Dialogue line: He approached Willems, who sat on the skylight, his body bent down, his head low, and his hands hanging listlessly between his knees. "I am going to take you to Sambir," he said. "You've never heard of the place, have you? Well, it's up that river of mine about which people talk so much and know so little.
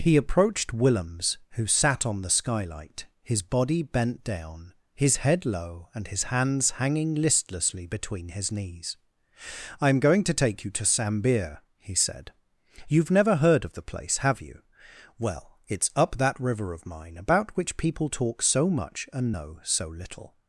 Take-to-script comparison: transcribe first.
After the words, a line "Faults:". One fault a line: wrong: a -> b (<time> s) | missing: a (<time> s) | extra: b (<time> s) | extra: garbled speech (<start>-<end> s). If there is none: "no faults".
He approached Willems, who sat on the skylight, his body bent down, his head low, and his hands hanging listlessly between his knees. "I am going to take you to Sambir," he said. "You've never heard of the place, have you? Well, it's up that river of mine about which people talk so much and know so little.
Faults:
no faults